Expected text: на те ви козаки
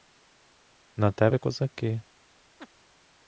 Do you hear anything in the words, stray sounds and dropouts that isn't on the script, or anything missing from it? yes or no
yes